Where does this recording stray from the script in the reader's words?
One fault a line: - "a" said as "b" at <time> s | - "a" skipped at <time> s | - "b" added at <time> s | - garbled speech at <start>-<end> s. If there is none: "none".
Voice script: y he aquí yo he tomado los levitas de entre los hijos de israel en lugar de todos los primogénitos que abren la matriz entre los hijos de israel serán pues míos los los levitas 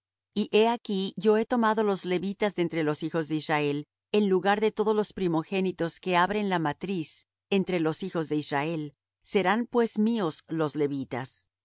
- "los" skipped at 10.7 s